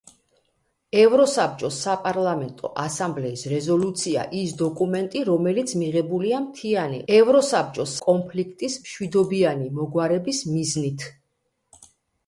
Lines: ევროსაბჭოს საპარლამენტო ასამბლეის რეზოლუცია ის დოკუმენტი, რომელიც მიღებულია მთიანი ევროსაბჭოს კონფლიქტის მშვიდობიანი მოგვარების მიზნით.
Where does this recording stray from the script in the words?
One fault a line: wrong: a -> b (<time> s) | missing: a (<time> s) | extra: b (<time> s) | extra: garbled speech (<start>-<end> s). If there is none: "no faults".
no faults